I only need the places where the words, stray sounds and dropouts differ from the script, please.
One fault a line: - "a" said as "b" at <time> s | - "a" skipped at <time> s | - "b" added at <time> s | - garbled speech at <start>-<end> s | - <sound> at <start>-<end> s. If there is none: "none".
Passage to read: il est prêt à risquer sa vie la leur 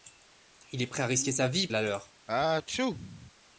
- sneeze at 2.3-3.3 s